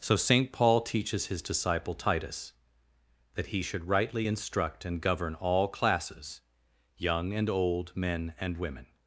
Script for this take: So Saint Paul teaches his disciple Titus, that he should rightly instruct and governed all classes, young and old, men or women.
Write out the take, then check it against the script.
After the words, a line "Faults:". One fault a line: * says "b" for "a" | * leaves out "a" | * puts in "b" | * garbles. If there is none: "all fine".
So Saint Paul teaches his disciple Titus, that he should rightly instruct and govern all classes, young and old, men and women.
Faults:
* says "govern" for "governed"
* says "and" for "or"